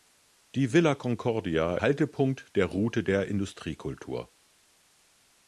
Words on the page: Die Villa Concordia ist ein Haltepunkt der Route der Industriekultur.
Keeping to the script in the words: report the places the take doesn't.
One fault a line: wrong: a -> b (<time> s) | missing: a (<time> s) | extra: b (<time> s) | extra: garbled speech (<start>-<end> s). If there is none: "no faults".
missing: ist ein (1.8 s)